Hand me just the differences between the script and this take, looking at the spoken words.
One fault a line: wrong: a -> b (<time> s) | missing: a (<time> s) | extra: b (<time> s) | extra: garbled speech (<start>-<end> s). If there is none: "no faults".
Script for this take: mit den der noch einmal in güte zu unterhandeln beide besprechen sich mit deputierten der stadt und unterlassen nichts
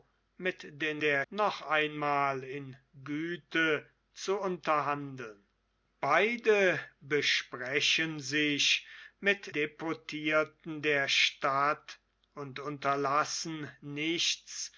no faults